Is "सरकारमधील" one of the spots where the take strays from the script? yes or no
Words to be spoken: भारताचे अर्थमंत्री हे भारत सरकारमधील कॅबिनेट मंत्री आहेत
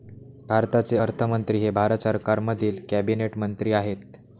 no